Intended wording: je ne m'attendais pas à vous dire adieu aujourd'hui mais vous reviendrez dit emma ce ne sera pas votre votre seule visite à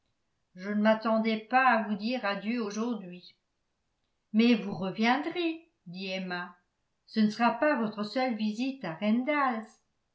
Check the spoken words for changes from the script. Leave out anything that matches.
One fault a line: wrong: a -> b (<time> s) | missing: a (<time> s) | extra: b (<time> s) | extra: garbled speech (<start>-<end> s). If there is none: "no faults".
missing: votre (8.0 s)